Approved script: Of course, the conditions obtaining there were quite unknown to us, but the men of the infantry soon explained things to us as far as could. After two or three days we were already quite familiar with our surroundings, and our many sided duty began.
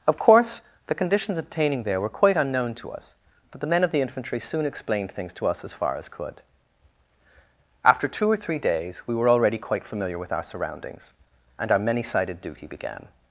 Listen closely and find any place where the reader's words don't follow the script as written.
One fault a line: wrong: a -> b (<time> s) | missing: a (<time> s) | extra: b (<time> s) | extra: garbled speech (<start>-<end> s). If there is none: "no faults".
no faults